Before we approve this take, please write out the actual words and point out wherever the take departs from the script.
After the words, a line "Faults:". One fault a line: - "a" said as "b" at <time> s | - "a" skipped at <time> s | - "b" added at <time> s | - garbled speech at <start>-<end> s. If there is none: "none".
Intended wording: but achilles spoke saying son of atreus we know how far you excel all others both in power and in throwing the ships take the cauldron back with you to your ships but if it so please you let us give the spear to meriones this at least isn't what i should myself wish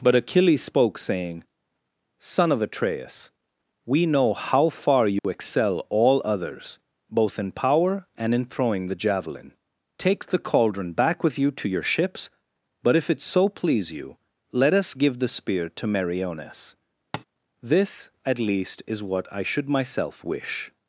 but achilles spoke saying son of atreus we know how far you excel all others both in power and in throwing the javelin take the cauldron back with you to your ships but if it so please you let us give the spear to meriones this at least is what i should myself wish
Faults:
- "ships" said as "javelin" at 8.9 s
- "isn't" said as "is" at 18.9 s